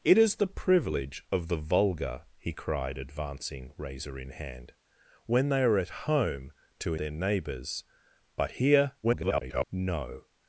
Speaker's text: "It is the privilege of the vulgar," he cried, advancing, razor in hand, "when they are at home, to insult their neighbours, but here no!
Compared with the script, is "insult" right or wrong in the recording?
wrong